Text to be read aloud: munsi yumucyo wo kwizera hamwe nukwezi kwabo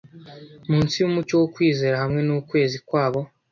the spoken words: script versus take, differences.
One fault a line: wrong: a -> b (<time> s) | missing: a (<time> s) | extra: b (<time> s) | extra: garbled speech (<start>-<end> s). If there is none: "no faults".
no faults